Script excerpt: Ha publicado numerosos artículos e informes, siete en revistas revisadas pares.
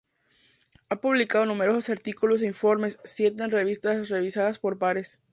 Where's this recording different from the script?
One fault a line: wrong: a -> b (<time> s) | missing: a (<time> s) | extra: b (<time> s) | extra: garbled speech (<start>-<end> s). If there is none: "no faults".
extra: por (4.6 s)